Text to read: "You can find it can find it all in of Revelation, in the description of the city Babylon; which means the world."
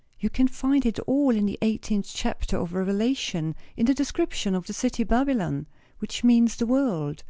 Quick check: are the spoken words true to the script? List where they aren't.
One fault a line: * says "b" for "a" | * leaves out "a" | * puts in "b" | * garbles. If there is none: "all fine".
* says "all in the eighteenth chapter" for "can find it all in"